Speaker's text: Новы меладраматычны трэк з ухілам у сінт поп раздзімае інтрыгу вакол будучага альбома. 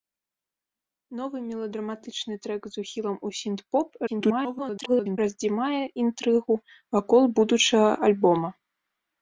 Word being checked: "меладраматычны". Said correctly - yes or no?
yes